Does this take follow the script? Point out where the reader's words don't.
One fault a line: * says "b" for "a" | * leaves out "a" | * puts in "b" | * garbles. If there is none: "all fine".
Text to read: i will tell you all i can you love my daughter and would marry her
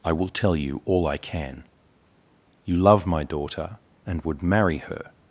all fine